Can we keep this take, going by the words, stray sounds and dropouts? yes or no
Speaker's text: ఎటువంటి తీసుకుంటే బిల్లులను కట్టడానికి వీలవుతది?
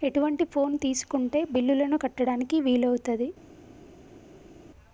no